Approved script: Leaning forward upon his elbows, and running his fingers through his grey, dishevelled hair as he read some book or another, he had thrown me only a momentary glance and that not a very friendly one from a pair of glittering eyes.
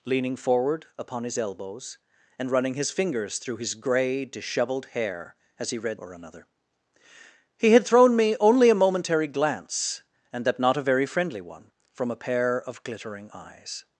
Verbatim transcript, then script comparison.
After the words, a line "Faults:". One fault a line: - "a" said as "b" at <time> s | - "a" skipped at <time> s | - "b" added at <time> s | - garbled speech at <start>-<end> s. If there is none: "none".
Leaning forward upon his elbows, and running his fingers through his grey, dishevelled hair as he read or another, he had thrown me only a momentary glance and that not a very friendly one from a pair of glittering eyes.
Faults:
- "some book" skipped at 6.0 s